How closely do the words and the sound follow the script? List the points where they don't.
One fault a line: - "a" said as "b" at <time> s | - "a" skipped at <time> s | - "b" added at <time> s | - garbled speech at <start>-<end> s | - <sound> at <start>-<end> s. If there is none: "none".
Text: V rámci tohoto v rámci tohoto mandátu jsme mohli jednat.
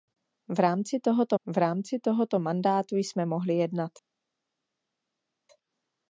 none